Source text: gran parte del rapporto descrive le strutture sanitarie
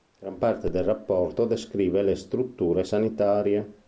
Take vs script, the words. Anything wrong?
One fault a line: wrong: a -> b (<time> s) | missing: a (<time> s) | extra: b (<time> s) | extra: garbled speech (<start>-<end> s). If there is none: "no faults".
no faults